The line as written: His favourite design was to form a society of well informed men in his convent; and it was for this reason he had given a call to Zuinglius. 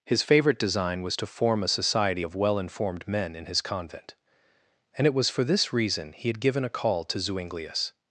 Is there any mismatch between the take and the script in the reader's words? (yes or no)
no